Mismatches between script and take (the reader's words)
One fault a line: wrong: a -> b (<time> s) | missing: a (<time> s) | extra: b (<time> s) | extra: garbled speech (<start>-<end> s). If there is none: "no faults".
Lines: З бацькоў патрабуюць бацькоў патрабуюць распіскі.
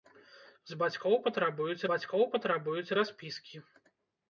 no faults